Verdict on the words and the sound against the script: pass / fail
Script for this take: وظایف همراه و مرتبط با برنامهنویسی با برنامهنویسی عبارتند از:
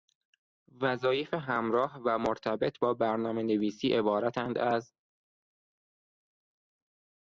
fail